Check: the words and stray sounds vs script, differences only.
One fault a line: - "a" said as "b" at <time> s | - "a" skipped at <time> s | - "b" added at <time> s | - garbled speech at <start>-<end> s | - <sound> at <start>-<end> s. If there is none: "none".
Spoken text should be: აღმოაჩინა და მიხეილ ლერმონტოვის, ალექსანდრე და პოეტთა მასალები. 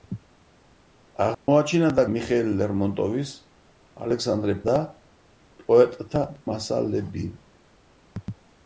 - dropout at 1.3-1.5 s